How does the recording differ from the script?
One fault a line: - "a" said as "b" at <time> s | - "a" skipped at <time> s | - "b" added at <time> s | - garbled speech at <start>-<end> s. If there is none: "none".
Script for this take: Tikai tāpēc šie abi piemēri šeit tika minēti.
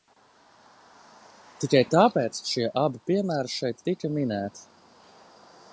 none